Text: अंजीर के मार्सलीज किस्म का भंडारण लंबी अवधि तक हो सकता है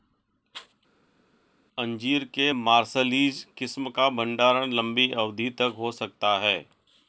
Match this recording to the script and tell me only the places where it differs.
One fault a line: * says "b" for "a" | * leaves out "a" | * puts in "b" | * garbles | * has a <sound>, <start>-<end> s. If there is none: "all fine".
all fine